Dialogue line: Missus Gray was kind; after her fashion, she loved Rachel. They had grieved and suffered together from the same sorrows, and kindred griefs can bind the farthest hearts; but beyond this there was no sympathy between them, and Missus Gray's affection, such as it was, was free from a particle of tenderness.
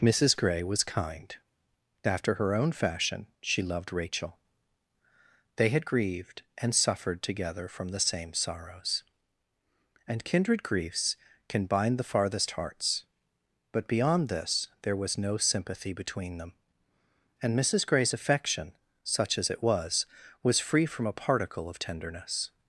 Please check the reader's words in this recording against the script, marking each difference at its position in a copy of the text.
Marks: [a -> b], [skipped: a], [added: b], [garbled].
Missus Gray was kind; after her [added: own] fashion, she loved Rachel. They had grieved and suffered together from the same sorrows, and kindred griefs can bind the farthest hearts; but beyond this there was no sympathy between them, and Missus Gray's affection, such as it was, was free from a particle of tenderness.